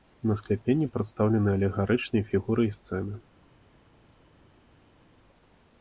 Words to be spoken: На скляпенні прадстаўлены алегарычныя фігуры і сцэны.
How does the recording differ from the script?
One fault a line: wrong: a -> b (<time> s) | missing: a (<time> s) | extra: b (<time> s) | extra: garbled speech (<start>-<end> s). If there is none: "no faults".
no faults